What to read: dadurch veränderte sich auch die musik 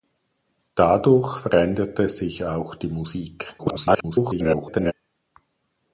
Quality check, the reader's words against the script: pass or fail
fail